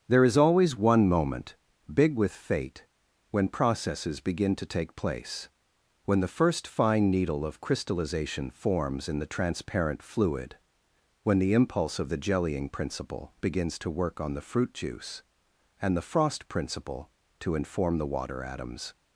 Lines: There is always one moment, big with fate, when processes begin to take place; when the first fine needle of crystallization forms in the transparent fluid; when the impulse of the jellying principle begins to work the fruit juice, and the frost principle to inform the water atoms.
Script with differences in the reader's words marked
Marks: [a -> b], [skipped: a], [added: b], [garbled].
There is always one moment, big with fate, when processes begin to take place; when the first fine needle of crystallization forms in the transparent fluid; when the impulse of the jellying principle begins to work [added: on] the fruit juice, and the frost principle to inform the water atoms.